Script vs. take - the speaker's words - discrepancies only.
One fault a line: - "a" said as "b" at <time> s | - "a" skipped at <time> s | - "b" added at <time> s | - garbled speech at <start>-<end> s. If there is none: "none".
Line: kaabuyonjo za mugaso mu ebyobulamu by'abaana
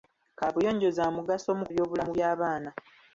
none